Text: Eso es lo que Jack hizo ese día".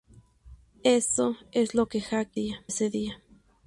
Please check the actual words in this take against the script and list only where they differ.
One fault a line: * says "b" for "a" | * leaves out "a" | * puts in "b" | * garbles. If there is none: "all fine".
* says "día" for "hizo"